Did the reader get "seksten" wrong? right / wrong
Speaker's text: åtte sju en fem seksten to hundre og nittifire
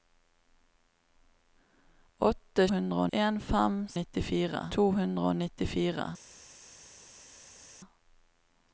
wrong